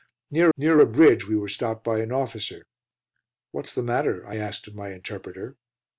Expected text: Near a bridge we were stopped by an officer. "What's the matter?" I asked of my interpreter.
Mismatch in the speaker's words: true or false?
true